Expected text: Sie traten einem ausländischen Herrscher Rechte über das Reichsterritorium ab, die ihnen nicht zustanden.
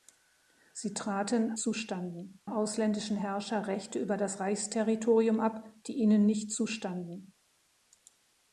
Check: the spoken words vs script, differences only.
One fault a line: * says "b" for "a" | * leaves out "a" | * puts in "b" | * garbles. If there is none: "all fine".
* says "zustanden" for "einem"